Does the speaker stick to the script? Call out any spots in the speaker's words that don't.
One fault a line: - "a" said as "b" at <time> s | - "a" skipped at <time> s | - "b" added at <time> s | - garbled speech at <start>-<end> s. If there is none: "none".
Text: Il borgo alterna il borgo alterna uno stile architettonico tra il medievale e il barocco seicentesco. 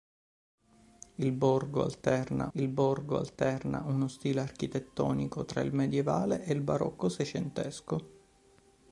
none